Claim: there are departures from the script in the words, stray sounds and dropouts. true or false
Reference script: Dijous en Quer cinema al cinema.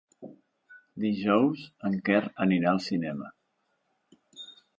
true